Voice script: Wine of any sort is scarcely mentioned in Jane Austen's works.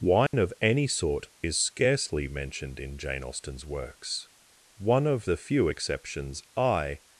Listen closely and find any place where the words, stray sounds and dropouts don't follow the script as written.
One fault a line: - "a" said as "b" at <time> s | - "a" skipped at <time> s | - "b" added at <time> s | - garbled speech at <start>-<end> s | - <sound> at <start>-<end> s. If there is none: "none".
- dropout at 0.3-0.3 s
- "One of the few exceptions I" added at 4.8 s